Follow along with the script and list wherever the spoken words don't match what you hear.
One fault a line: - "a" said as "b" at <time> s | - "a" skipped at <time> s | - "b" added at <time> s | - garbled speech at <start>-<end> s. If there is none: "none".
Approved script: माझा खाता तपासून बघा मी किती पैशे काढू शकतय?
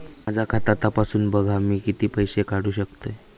none